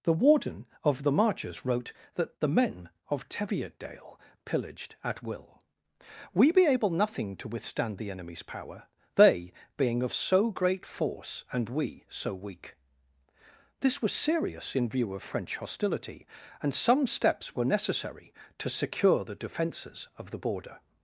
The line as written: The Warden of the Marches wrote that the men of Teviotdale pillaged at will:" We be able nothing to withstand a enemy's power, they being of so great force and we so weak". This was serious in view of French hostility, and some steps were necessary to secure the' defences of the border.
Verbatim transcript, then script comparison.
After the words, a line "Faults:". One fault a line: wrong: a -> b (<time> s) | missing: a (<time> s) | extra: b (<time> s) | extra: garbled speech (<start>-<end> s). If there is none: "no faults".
The Warden of the Marches wrote that the men of Teviotdale pillaged at will:" We be able nothing to withstand the enemy's power, they being of so great force and we so weak". This was serious in view of French hostility, and some steps were necessary to secure the' defences of the border.
Faults:
wrong: a -> the (8.0 s)